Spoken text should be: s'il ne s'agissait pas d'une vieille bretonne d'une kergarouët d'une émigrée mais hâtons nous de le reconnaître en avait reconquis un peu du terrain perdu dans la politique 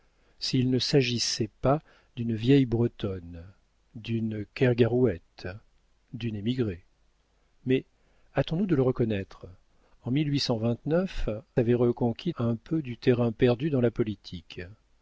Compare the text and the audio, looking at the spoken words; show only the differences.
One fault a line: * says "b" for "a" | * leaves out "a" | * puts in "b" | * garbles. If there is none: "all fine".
all fine